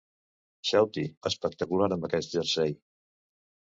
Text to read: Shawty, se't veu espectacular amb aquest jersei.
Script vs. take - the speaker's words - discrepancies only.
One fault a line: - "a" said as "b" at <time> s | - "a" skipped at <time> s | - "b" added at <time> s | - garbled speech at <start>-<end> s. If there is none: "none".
- "se't veu" skipped at 1.0 s